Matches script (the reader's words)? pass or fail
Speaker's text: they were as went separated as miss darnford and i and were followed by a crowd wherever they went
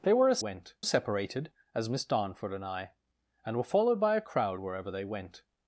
pass